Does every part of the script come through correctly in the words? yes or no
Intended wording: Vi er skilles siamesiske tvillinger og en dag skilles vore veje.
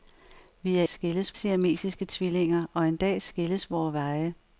yes